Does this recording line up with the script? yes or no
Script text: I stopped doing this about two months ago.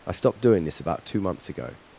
yes